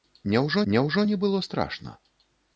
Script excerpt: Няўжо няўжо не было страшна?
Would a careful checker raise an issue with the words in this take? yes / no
no